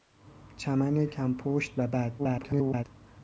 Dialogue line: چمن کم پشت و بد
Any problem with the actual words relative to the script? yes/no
yes